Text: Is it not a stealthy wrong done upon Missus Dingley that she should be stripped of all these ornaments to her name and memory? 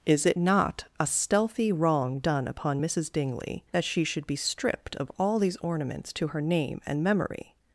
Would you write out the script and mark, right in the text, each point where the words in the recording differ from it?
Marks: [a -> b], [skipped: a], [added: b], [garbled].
Is it not a stealthy wrong done upon Missus Dingley that she should be stripped of all these ornaments to her name and memory?